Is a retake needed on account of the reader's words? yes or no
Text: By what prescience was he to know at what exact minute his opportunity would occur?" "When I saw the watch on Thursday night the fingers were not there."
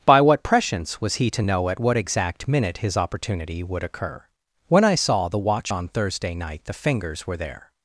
yes